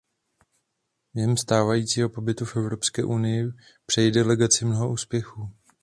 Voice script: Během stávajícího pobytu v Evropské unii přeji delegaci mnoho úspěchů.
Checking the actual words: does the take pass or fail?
pass